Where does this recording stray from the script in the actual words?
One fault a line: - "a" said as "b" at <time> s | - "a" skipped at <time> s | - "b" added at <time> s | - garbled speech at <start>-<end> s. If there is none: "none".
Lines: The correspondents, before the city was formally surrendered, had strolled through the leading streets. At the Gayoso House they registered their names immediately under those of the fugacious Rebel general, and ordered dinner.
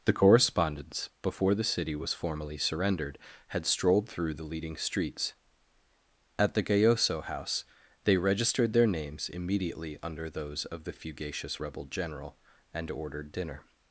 none